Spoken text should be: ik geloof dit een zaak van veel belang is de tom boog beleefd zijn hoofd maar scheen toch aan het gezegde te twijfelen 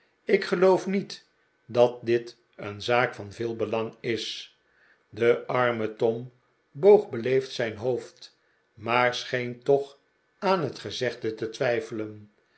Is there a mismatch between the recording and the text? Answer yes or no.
yes